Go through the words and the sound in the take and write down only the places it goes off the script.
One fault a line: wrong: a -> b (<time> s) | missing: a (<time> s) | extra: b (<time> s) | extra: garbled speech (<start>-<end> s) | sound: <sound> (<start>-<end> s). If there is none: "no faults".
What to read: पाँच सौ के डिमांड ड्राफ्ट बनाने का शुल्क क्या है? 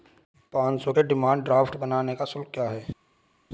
no faults